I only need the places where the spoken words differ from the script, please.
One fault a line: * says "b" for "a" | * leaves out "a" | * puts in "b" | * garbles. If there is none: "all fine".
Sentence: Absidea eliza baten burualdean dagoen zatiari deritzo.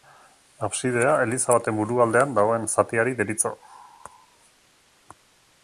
all fine